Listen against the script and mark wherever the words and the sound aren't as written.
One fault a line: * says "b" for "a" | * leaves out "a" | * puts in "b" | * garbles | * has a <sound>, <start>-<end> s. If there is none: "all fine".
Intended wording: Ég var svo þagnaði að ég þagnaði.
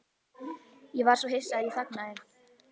* says "hissa" for "þagnaði"